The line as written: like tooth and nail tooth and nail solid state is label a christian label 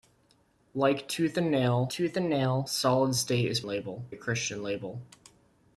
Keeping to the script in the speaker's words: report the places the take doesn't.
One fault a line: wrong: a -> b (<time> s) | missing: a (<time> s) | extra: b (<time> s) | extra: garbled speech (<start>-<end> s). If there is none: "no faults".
no faults